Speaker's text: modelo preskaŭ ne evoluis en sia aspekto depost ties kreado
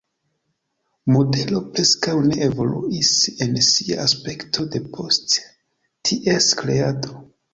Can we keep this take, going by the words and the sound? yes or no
yes